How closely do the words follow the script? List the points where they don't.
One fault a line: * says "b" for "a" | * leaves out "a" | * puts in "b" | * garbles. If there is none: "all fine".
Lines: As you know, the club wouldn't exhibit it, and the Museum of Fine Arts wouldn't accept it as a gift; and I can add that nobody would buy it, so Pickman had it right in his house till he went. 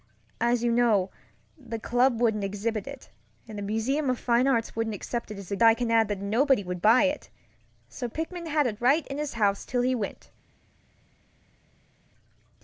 * leaves out "gift and"